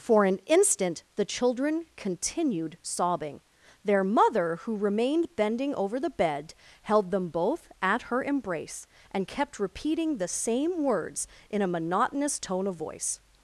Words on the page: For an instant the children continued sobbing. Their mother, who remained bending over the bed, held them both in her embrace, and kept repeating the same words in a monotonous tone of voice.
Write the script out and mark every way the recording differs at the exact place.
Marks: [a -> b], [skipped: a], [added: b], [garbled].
For an instant the children continued sobbing. Their mother, who remained bending over the bed, held them both [in -> at] her embrace, and kept repeating the same words in a monotonous tone of voice.